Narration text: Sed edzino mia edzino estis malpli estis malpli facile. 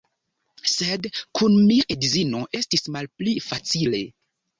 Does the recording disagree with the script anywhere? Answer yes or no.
yes